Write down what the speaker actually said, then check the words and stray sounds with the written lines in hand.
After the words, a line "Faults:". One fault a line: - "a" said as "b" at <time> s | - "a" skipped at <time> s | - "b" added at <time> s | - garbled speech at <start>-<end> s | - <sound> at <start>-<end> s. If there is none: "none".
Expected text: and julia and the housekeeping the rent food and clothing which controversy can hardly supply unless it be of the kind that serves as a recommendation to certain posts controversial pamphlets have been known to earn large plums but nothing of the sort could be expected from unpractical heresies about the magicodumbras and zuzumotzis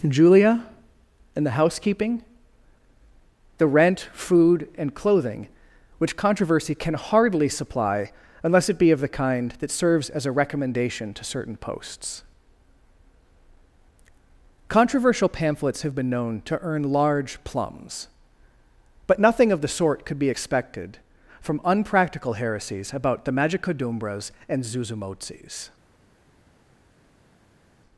julia and the housekeeping the rent food and clothing which controversy can hardly supply unless it be of the kind that serves as a recommendation to certain posts controversial pamphlets have been known to earn large plums but nothing of the sort could be expected from unpractical heresies about the magicodumbras and zuzumotzis
Faults:
- "and" skipped at 0.1 s